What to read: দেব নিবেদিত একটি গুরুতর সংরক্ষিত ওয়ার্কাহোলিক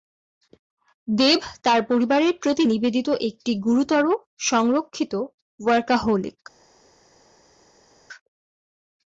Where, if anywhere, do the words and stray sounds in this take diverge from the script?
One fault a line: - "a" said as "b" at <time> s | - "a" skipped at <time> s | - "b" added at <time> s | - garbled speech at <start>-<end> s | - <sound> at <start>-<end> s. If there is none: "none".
- "তার পরিবারের প্রতি" added at 1.6 s